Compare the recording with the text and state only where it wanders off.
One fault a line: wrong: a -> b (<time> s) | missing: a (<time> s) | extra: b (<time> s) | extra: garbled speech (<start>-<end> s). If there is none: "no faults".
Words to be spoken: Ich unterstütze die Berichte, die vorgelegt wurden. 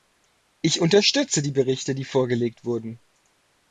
no faults